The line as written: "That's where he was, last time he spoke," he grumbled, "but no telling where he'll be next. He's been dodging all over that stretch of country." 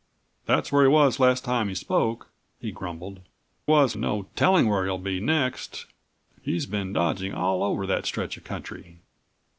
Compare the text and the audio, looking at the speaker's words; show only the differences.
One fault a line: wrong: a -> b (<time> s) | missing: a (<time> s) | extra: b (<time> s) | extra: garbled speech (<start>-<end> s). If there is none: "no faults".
wrong: but -> was (3.7 s)